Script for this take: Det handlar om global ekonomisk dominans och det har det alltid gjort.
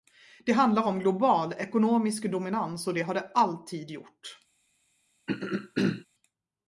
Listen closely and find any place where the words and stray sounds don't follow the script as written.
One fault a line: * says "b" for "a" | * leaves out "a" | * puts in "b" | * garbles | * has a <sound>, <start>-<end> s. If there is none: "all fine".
* has a throat clearing, 5.3-6.1 s